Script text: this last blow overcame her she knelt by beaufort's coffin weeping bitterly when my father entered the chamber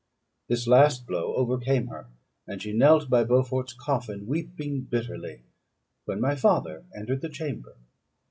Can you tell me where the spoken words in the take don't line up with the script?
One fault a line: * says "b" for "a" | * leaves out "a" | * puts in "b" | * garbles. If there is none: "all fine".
* puts in "and"